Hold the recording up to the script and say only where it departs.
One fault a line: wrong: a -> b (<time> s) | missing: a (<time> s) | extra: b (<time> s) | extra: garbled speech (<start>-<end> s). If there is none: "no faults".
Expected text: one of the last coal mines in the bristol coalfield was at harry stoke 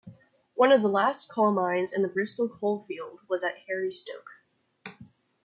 no faults